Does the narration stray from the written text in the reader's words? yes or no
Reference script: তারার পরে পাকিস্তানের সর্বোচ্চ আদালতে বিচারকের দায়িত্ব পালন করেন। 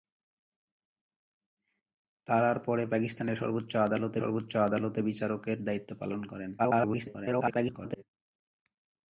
yes